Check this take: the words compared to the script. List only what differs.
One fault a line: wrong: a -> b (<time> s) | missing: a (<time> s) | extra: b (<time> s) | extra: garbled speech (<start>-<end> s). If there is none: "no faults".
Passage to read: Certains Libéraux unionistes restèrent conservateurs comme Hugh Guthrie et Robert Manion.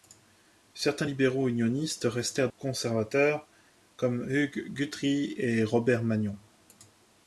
no faults